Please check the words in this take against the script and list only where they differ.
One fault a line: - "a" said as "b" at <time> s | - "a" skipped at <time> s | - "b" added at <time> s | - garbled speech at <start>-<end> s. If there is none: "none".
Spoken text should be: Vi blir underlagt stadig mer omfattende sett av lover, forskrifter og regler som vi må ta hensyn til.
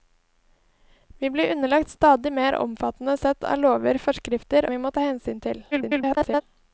- "og regler som" skipped at 4.7 s
- garbled speech at 5.7-6.4 s